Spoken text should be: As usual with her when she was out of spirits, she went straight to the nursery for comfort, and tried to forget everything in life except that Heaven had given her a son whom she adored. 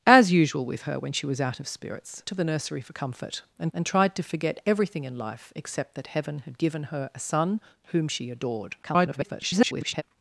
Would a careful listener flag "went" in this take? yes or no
yes